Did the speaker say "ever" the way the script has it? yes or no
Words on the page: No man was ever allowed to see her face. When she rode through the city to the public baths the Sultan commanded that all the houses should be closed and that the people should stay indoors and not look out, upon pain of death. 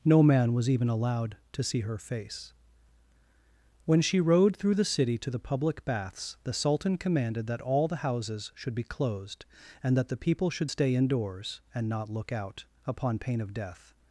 no